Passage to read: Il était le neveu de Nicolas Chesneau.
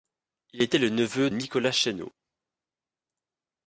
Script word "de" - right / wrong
wrong